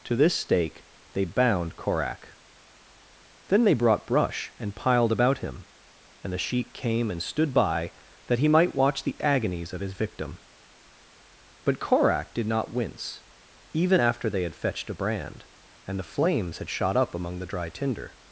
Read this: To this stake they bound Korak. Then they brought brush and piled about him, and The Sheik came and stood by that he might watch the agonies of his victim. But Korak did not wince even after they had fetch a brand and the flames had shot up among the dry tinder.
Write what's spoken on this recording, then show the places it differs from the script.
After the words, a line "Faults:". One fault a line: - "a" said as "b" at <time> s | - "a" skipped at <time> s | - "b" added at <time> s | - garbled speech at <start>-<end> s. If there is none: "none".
To this stake they bound Korak. Then they brought brush and piled about him, and The Sheik came and stood by that he might watch the agonies of his victim. But Korak did not wince even after they had fetched a brand and the flames had shot up among the dry tinder.
Faults:
- "fetch" said as "fetched" at 14.6 s